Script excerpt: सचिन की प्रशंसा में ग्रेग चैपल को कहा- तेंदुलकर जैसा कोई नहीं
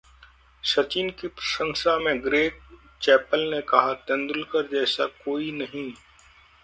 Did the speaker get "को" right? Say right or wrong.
wrong